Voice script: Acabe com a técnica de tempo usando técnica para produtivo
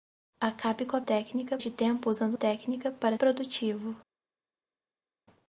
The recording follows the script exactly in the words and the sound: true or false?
true